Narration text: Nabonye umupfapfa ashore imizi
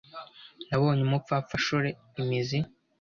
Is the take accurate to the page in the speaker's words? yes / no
yes